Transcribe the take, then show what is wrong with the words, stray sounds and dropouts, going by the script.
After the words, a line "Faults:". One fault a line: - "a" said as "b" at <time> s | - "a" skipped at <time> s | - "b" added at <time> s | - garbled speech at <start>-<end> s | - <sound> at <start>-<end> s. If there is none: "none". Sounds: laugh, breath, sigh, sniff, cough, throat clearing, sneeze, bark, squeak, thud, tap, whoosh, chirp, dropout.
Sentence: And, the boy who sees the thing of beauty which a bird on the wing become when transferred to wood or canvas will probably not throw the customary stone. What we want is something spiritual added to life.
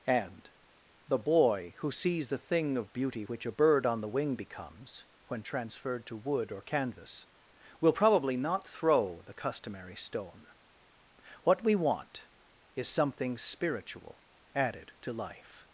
And, the boy who sees the thing of beauty which a bird on the wing becomes when transferred to wood or canvas will probably not throw the customary stone. What we want is something spiritual added to life.
Faults:
- "become" said as "becomes" at 4.3 s